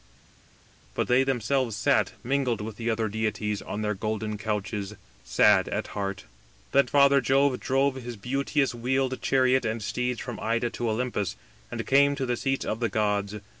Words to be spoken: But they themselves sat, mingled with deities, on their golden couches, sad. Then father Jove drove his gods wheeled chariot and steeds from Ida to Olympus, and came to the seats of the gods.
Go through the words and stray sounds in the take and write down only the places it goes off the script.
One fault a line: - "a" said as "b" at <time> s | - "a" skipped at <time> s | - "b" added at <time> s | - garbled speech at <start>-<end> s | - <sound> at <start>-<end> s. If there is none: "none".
- "the other" added at 2.8 s
- "at heart" added at 5.7 s
- "gods" said as "beauteous" at 8.2 s